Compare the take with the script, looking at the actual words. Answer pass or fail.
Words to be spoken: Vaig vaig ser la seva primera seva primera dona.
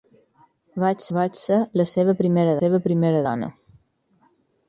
pass